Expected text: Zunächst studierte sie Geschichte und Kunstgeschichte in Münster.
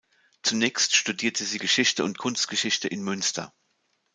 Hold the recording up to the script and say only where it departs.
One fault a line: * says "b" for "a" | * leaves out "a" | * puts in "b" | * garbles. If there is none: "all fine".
all fine